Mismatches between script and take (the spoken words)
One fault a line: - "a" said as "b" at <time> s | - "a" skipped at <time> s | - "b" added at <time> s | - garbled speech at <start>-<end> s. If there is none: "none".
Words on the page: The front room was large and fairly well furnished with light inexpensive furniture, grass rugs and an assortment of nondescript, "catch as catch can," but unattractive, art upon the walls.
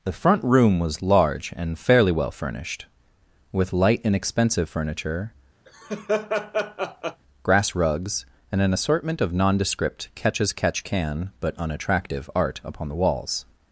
none